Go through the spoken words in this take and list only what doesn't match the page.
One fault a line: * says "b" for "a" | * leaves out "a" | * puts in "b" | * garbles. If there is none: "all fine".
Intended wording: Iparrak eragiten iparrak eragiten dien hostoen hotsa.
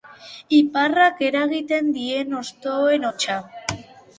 * leaves out "iparrak eragiten"